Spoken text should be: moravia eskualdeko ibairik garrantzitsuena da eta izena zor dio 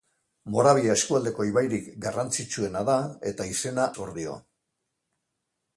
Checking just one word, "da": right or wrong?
right